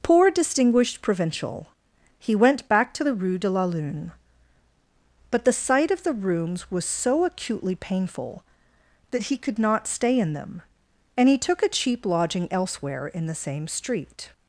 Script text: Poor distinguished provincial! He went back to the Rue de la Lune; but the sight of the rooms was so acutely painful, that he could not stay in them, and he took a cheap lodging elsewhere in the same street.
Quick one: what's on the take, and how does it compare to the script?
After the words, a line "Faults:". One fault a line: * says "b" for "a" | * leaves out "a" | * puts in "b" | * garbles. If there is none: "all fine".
Poor distinguished provincial! He went back to the Rue de la Lune; but the sight of the rooms was so acutely painful, that he could not stay in them, and he took a cheap lodging elsewhere in the same street.
Faults:
all fine